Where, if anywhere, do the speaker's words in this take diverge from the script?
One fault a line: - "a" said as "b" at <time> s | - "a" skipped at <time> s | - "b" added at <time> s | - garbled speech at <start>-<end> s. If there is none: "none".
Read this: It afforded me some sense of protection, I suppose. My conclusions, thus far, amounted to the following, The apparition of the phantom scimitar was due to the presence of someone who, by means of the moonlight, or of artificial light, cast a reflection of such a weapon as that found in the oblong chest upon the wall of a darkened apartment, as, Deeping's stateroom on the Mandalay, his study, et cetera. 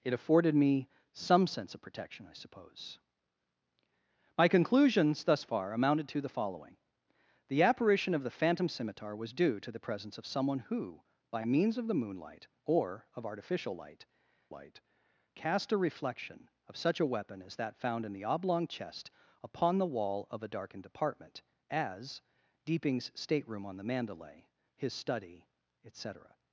- "light" added at 14.5 s